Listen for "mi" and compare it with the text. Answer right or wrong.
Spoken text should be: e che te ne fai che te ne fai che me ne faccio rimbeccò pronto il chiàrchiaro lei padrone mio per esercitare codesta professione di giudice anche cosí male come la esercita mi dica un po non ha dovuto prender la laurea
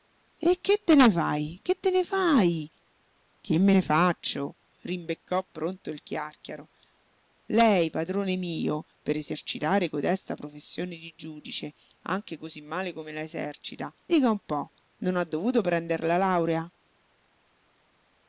wrong